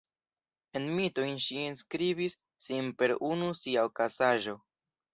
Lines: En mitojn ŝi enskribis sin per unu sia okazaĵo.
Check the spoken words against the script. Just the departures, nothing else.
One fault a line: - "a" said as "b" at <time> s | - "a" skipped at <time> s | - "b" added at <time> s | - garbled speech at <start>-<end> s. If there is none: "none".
none